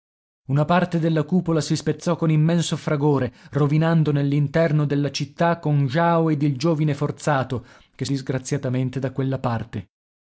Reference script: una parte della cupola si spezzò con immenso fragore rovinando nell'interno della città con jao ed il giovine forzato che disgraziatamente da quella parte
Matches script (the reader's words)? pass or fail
pass